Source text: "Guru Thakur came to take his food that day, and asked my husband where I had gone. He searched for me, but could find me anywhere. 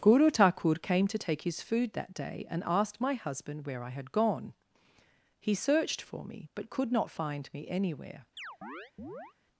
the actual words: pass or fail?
fail